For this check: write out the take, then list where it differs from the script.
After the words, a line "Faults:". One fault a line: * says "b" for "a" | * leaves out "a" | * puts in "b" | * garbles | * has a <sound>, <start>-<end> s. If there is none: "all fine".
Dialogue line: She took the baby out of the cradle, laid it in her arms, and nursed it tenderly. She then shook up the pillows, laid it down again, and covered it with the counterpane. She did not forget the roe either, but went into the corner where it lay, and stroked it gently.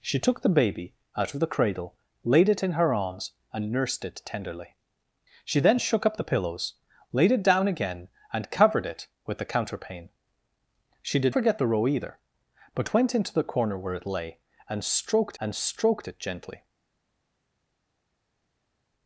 She took the baby out of the cradle, laid it in her arms, and nursed it tenderly. She then shook up the pillows, laid it down again, and covered it with the counterpane. She did forget the roe either, but went into the corner where it lay, and stroked and stroked it gently.
Faults:
* leaves out "not"
* puts in "and stroked"